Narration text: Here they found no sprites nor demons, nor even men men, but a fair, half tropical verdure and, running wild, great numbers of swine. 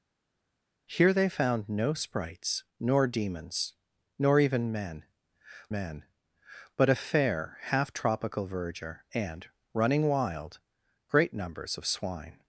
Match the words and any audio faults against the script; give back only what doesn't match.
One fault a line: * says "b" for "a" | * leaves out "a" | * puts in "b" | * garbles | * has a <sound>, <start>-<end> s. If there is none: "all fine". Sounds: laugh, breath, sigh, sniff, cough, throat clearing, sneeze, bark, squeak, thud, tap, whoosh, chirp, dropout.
all fine